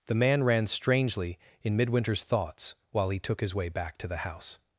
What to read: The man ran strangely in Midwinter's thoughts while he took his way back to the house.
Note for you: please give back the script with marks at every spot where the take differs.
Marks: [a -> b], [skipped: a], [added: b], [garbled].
The man ran strangely in Midwinter's thoughts while he took his way back to the house.